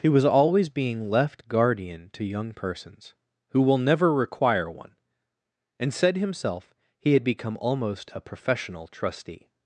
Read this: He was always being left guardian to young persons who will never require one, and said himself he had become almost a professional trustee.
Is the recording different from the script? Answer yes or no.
no